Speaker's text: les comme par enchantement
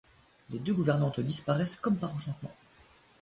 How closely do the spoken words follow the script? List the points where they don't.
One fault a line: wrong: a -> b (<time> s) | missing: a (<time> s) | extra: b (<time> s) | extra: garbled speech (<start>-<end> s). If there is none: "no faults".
extra: deux gouvernantes disparaissent (0.6 s)